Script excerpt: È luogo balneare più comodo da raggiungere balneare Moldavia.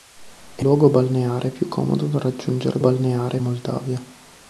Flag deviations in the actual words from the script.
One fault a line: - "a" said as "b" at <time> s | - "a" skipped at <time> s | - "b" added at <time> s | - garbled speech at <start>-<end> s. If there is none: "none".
none